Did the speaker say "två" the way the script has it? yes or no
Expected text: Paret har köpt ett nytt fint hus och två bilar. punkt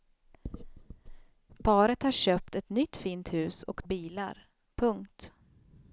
no